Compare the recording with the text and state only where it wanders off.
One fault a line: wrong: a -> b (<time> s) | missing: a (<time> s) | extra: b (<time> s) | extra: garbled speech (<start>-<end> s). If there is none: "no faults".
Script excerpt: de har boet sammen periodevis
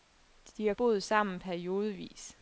no faults